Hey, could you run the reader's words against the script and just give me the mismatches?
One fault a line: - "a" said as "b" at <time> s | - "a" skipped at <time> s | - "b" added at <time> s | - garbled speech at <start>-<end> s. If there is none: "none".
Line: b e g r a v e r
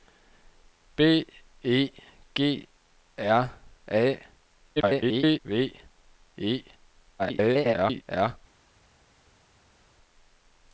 - garbled speech at 4.8-5.4 s
- garbled speech at 7.2-8.0 s